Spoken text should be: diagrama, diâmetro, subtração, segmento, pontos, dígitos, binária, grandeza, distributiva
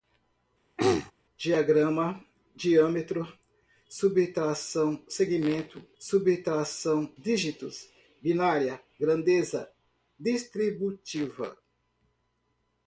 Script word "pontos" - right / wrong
wrong